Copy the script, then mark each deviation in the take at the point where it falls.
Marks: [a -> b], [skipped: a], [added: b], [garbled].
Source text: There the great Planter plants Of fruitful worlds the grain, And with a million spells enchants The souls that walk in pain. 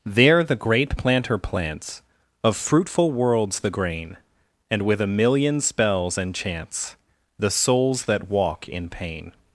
There the great Planter plants Of fruitful worlds the grain, And with a million spells enchants The souls that walk in pain.